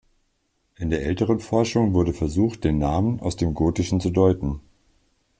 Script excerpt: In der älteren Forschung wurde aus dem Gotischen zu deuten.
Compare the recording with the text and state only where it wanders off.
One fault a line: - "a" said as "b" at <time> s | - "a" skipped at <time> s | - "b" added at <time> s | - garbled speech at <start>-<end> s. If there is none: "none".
- "versucht den Namen" added at 2.1 s